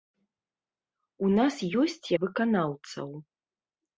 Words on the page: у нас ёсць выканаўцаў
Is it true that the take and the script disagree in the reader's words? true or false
false